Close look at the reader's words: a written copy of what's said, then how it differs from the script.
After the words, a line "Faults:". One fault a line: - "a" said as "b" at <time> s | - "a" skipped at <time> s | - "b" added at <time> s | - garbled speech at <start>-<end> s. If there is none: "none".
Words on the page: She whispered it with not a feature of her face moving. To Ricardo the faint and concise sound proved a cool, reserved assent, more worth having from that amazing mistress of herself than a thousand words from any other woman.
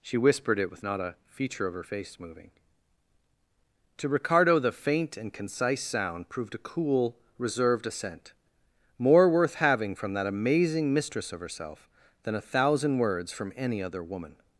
She whispered it with not a feature of her face moving. To Ricardo the faint and concise sound proved a cool, reserved assent, more worth having from that amazing mistress of herself than a thousand words from any other woman.
Faults:
none